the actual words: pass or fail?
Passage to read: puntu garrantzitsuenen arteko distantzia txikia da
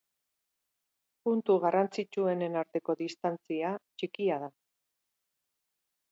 pass